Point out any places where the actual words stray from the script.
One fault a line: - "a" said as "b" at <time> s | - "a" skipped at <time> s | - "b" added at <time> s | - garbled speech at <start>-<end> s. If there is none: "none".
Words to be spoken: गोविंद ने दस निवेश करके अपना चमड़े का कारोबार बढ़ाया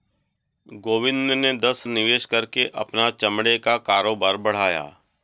none